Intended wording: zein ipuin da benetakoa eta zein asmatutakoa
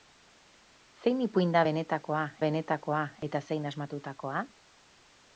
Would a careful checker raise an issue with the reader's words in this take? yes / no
yes